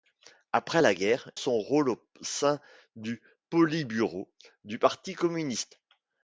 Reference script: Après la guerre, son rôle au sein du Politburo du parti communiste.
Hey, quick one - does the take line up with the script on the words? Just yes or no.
yes